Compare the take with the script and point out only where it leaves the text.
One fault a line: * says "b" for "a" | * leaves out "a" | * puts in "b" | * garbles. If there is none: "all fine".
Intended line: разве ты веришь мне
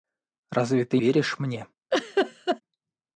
all fine